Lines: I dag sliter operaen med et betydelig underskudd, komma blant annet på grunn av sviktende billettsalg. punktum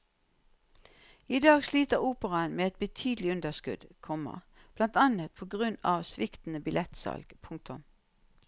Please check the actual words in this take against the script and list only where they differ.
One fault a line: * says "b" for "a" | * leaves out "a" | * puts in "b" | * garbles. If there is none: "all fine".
all fine